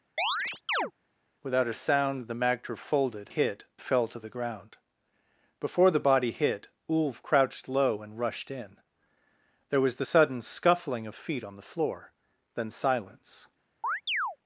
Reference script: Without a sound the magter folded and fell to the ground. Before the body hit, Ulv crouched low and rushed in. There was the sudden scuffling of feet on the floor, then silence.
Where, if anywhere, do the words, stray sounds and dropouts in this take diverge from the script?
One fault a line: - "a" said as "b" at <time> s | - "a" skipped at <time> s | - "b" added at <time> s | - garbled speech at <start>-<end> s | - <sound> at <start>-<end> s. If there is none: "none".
- chirp at 0.2-0.9 s
- "and" said as "hit" at 3.3 s
- chirp at 13.8-14.4 s